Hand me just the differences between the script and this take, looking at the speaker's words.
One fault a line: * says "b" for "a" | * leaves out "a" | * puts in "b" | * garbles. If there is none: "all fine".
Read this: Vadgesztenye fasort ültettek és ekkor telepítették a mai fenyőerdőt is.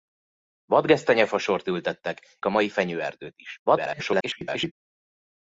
* leaves out "és ekkor telepítették"
* garbles